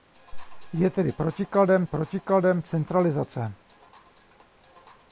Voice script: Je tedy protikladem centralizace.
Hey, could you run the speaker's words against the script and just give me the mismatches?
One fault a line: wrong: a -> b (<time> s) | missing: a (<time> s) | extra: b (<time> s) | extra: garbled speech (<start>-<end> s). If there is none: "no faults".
extra: protikladem (1.8 s)